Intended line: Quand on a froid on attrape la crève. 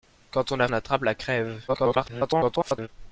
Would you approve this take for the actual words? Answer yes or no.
no